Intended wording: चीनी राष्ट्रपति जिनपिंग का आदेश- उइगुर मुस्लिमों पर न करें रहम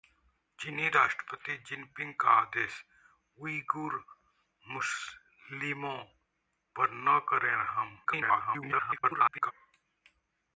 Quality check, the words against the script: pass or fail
fail